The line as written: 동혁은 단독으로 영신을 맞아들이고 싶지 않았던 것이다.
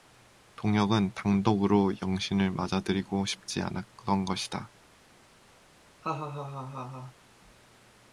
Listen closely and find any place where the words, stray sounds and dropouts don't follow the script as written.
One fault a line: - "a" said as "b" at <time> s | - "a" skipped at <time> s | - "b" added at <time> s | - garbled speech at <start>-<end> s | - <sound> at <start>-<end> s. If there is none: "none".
- laugh at 6.0-7.1 s